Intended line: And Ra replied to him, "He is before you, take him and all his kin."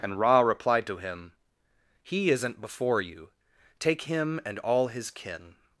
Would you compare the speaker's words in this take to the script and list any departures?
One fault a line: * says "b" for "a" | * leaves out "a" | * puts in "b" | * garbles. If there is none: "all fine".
* says "isn't" for "is"